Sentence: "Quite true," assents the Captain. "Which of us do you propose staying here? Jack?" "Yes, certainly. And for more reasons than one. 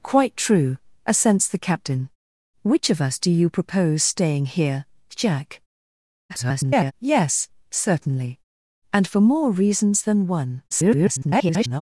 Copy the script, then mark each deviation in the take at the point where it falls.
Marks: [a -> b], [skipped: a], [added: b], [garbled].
"Quite true," assents the Captain. "Which of us do you propose staying here? Jack?" [garbled] "Yes, certainly. And for more reasons than one. [garbled]